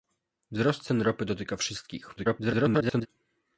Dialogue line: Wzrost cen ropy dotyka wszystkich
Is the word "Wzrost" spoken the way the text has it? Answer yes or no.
yes